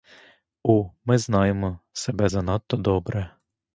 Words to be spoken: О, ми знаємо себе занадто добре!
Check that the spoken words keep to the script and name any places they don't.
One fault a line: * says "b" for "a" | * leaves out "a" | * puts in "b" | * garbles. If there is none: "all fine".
all fine